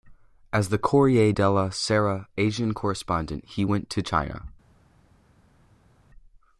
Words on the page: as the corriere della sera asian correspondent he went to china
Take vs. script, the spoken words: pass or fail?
pass